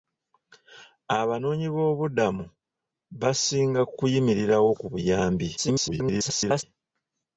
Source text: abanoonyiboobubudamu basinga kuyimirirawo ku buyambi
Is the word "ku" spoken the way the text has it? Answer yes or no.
yes